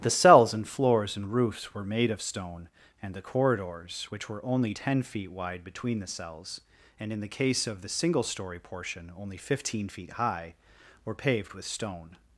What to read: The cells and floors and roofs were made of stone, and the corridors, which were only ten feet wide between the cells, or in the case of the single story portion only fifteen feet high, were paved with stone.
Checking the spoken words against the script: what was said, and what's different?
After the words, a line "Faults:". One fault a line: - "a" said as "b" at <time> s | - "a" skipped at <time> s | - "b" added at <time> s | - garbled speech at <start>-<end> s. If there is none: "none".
The cells and floors and roofs were made of stone, and the corridors, which were only ten feet wide between the cells, and in the case of the single story portion only fifteen feet high, were paved with stone.
Faults:
- "or" said as "and" at 7.0 s